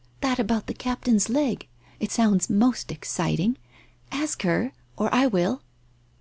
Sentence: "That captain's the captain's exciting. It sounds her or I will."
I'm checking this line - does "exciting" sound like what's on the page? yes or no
no